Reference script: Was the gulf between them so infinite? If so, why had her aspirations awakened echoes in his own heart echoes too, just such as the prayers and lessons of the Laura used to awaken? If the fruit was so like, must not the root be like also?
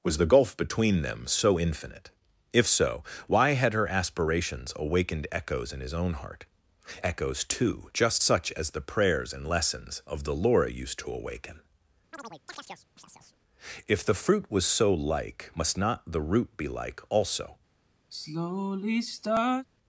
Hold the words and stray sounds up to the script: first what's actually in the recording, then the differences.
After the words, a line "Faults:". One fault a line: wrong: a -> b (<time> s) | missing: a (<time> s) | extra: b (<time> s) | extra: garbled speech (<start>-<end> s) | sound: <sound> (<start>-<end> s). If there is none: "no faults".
Was the gulf between them so infinite? If so, why had her aspirations awakened echoes in his own heart echoes too, just such as the prayers and lessons of the Laura used to awaken? If the fruit was so like, must not the root be like also?
Faults:
sound: chirp (12.1-13.4 s)
sound: sigh (18.1-19.7 s)